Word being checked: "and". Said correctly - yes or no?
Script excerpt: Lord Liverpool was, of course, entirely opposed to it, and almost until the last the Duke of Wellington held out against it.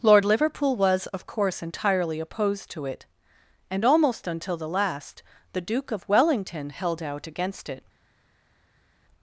yes